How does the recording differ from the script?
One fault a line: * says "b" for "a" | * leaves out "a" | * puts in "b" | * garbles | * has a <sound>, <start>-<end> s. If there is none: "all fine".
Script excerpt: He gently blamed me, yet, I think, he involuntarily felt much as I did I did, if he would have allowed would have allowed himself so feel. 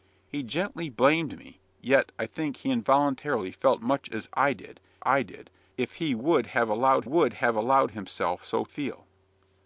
all fine